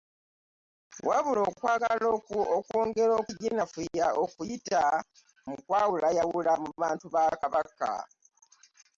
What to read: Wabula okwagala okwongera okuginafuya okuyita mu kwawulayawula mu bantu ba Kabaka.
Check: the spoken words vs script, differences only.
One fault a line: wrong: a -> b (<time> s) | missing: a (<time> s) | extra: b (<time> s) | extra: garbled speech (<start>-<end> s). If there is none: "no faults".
no faults